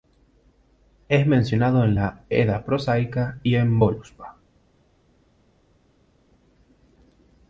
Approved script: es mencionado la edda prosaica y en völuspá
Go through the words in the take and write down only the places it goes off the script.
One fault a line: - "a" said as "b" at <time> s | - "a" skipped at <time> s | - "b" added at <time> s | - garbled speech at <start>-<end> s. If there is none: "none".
- "en" added at 1.8 s